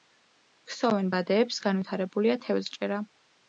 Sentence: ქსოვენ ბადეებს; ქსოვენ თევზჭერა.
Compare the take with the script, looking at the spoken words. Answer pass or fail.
fail